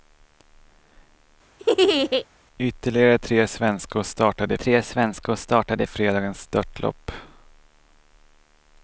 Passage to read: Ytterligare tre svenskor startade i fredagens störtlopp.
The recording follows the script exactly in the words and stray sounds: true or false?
false